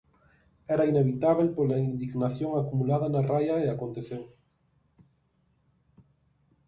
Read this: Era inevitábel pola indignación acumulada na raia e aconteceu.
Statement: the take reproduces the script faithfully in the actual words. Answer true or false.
true